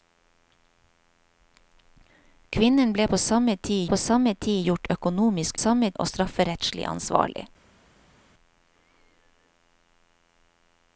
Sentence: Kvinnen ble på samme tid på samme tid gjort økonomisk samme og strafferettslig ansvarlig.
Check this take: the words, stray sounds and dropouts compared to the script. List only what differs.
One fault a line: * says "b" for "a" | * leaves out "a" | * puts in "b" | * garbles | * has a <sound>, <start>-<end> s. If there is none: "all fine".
all fine